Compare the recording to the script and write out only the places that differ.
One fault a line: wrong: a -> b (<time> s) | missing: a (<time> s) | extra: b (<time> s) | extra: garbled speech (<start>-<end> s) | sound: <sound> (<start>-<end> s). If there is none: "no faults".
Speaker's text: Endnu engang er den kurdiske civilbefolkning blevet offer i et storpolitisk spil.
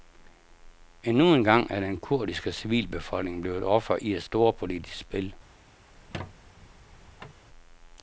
sound: squeak (5.9-7.4 s)